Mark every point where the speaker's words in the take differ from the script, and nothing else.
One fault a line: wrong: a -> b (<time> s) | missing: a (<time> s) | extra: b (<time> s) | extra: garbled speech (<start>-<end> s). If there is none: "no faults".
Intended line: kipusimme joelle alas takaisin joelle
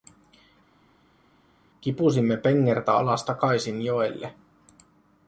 wrong: joelle -> pengertä (2.4 s)